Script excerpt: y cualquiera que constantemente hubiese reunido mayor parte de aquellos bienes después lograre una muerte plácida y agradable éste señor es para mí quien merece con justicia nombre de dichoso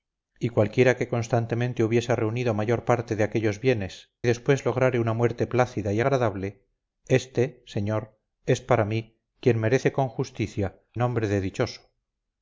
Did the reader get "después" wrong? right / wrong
right